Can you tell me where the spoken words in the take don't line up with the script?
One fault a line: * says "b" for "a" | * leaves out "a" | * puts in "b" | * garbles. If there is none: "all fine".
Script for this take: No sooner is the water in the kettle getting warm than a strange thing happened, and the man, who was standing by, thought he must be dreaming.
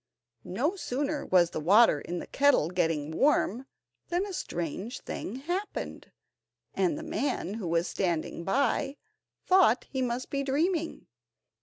* says "was" for "is"